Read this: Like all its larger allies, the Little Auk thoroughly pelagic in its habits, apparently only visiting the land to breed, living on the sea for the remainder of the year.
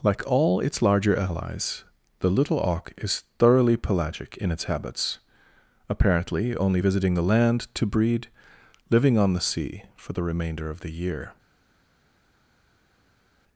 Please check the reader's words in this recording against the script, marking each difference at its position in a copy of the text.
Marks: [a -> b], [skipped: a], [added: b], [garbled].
Like all its larger allies, the Little Auk [added: is] thoroughly pelagic in its habits, apparently only visiting the land to breed, living on the sea for the remainder of the year.